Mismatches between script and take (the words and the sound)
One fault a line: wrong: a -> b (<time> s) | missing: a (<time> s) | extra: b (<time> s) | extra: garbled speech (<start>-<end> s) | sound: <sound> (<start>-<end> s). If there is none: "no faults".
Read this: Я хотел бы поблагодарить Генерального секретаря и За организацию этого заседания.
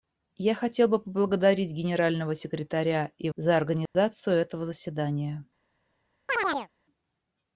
sound: dropout (3.9-3.9 s)
sound: chirp (6.3-6.7 s)